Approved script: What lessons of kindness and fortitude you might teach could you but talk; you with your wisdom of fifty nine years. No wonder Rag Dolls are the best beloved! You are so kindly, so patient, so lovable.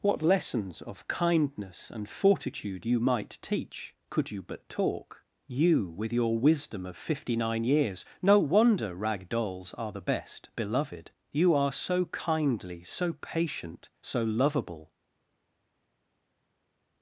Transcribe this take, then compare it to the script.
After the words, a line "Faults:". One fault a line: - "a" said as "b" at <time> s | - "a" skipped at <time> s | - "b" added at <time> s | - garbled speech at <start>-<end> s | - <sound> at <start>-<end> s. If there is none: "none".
What lessons of kindness and fortitude you might teach could you but talk; you with your wisdom of fifty nine years. No wonder Rag Dolls are the best beloved! You are so kindly, so patient, so lovable.
Faults:
none